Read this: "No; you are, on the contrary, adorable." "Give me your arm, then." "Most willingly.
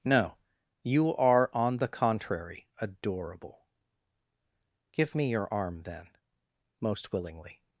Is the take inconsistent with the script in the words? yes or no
no